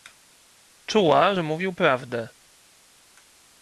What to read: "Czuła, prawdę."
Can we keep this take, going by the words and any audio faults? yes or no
no